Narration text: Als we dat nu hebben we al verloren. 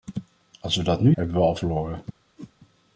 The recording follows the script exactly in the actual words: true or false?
true